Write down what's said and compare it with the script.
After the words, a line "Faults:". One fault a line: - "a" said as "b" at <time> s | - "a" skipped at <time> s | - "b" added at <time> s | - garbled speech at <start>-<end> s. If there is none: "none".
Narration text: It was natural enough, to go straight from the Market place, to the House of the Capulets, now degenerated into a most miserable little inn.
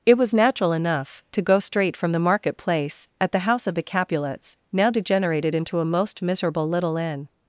It was natural enough, to go straight from the Market place, at the House of the Capulets, now degenerated into a most miserable little inn.
Faults:
- "to" said as "at" at 3.2 s